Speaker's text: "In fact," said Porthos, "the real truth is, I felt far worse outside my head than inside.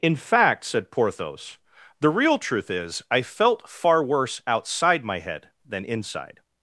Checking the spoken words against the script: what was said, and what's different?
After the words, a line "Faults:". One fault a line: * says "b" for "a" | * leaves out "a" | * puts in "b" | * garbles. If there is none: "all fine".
"In fact," said Porthos, "the real truth is, I felt far worse outside my head than inside.
Faults:
all fine